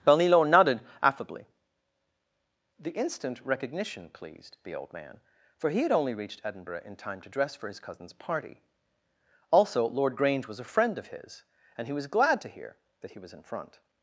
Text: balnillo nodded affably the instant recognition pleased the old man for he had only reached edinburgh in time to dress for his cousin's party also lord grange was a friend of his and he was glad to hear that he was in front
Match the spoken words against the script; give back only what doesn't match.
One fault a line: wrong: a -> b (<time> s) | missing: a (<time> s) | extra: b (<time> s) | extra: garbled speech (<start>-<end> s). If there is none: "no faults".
no faults